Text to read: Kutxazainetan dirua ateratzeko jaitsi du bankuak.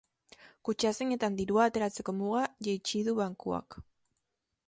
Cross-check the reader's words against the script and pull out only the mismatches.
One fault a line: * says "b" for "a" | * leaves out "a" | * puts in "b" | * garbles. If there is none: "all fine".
* puts in "muga"